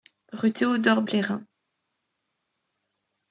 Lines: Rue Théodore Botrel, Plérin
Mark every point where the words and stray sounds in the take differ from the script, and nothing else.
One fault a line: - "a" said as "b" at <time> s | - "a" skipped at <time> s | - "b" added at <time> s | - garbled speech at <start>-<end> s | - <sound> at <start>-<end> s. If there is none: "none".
- "Botrel" skipped at 1.0 s